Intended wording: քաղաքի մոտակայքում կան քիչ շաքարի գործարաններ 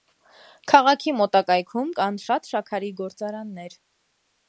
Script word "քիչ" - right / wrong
wrong